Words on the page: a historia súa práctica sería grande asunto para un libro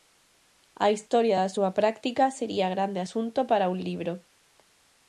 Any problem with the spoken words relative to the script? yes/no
yes